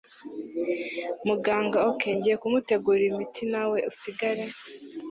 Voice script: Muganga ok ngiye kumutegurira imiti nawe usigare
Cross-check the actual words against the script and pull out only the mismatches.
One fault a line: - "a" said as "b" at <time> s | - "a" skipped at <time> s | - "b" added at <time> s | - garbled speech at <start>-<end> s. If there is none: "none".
none